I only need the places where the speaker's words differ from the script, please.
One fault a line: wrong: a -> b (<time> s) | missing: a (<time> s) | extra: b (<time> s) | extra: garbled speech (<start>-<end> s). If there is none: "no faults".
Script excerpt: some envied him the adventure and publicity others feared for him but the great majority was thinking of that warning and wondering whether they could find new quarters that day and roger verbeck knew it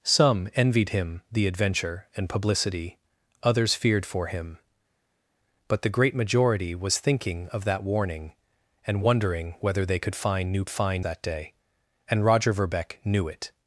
wrong: quarters -> find (10.7 s)